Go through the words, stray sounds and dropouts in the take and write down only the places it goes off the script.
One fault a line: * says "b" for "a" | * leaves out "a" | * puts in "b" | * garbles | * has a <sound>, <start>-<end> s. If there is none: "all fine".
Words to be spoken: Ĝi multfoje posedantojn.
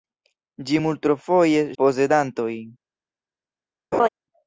* has a laugh, 3.9-4.1 s